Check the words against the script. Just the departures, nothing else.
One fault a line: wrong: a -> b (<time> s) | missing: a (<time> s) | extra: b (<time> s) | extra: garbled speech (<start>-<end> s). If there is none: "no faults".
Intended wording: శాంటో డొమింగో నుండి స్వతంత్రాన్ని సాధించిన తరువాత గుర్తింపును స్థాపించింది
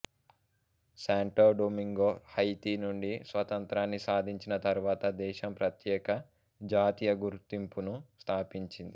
extra: హైతీ (2.3 s)
extra: దేశం ప్రత్యేక జాతీయ (5.2 s)